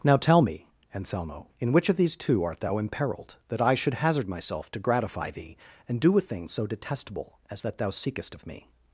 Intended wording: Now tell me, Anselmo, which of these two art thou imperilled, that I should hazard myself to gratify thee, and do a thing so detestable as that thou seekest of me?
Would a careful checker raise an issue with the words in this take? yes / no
yes